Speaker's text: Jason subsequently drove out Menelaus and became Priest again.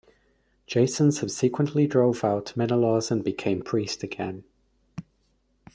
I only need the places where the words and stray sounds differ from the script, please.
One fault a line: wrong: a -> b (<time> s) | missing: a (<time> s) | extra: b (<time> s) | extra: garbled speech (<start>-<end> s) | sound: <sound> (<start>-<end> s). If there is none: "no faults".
no faults